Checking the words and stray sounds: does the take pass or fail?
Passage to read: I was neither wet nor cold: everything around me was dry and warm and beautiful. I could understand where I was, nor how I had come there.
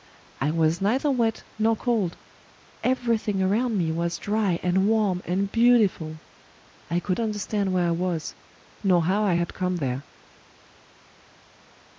pass